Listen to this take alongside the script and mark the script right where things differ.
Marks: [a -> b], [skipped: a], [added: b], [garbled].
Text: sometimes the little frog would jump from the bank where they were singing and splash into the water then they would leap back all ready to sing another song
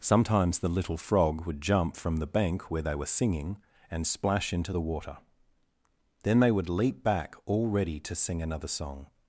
sometimes the little frog would jump from the bank where they were singing and splash into the water then they would leap back all ready to sing another song